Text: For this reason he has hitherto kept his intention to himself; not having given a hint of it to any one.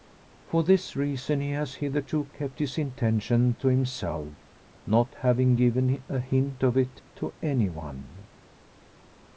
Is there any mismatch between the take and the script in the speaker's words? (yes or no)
no